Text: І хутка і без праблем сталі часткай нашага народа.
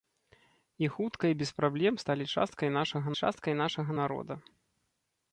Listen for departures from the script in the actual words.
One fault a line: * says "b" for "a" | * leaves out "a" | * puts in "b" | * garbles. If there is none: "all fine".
* puts in "часткай нашага"